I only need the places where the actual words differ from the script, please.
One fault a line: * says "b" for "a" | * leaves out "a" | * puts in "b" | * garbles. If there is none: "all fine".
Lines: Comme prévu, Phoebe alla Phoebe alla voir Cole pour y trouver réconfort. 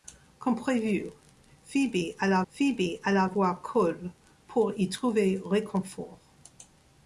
all fine